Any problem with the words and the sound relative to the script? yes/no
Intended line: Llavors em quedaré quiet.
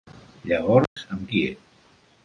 yes